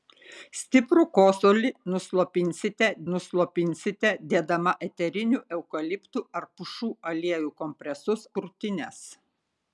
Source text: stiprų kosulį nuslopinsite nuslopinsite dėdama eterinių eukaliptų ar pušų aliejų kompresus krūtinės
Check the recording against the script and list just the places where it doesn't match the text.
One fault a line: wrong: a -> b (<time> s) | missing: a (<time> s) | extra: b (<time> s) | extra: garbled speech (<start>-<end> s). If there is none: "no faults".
no faults